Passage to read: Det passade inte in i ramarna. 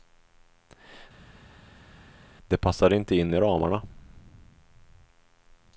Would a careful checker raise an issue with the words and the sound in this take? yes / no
no